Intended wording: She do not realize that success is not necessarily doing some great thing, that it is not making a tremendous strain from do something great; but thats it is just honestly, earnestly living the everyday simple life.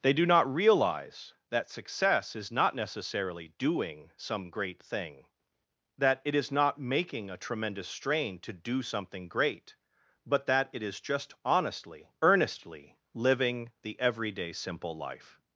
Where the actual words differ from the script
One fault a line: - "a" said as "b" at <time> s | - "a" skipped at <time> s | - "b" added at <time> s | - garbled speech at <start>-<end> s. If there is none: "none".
- "She" said as "They" at 0.0 s
- "from" said as "to" at 8.4 s
- "thats" said as "that" at 10.5 s